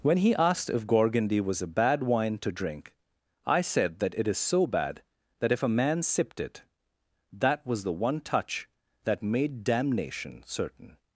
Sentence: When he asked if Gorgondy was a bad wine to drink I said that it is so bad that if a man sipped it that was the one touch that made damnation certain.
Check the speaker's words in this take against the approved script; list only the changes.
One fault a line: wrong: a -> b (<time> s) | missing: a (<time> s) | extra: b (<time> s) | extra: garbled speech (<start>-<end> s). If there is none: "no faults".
no faults